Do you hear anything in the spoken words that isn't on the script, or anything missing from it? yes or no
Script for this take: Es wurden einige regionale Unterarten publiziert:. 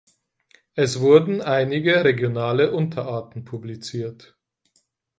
no